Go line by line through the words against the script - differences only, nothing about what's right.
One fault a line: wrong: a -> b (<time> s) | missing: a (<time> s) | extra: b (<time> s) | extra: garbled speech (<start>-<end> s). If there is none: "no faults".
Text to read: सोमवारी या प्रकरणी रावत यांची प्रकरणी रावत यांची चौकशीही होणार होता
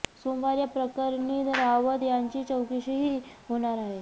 missing: प्रकरणी रावत यांची (2.4 s)
wrong: होता -> आहे (3.8 s)